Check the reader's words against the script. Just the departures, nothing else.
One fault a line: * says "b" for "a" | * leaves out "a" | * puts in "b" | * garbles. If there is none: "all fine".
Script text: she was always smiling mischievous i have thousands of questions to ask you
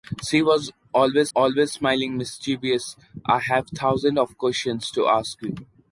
* puts in "always"